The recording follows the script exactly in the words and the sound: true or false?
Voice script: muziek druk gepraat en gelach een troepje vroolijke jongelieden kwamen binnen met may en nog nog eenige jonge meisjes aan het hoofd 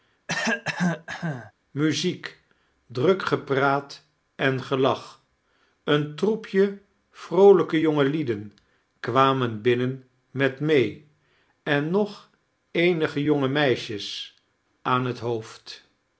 false